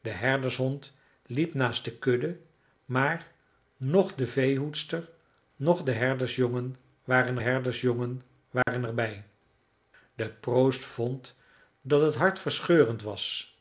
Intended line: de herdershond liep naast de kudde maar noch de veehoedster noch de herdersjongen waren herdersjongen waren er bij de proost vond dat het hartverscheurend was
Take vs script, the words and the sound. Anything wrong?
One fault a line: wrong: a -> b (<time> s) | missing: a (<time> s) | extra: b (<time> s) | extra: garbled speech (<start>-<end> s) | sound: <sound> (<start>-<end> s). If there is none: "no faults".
sound: dropout (8.6-8.7 s)